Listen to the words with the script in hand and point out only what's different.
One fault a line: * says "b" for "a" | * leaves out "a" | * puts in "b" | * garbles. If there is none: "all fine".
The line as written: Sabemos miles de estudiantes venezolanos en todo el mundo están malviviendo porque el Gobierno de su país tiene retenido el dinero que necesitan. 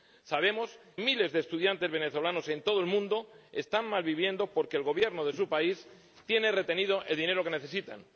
all fine